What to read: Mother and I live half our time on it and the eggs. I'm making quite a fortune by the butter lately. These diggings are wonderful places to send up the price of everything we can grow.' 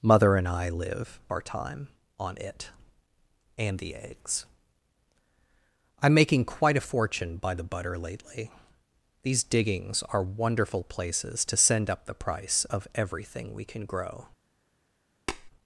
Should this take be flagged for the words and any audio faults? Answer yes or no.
yes